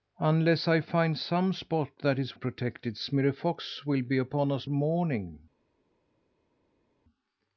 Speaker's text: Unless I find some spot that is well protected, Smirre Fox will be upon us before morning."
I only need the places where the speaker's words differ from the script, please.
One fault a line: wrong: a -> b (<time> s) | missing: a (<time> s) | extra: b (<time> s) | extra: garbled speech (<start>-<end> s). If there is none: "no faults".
missing: well (2.4 s)
missing: before (4.6 s)